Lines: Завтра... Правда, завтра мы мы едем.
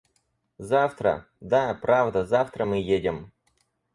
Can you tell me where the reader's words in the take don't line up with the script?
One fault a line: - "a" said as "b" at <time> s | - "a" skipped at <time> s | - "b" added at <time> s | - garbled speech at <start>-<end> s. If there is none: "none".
- "Да" added at 1.4 s
- "мы" skipped at 2.8 s